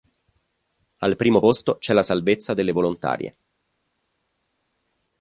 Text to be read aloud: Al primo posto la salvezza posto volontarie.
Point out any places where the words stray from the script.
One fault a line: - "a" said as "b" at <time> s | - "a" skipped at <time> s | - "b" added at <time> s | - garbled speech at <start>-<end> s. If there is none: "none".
- "c'è" added at 1.8 s
- "posto" said as "delle" at 2.5 s